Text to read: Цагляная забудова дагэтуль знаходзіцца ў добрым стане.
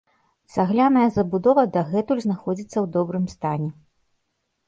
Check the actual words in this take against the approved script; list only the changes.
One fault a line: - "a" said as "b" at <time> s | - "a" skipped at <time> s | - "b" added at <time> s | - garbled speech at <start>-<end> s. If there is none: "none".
none